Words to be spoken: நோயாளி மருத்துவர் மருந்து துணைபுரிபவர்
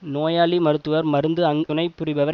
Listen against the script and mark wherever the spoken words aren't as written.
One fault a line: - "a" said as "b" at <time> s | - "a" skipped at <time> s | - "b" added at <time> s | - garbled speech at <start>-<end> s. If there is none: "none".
none